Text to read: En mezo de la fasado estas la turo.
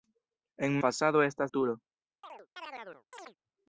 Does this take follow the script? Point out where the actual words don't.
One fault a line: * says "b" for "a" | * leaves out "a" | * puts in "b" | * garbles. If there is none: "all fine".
* leaves out "mezo de la"
* leaves out "la"